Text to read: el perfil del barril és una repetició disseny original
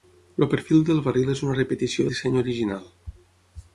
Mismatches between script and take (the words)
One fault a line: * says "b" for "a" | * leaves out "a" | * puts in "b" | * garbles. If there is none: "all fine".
all fine